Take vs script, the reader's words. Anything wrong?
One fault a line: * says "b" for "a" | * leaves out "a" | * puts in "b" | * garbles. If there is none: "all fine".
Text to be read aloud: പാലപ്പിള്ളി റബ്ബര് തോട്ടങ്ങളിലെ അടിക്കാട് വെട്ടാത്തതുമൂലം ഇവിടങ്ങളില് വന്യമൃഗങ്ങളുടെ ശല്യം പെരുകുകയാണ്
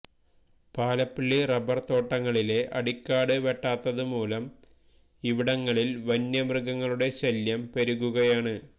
all fine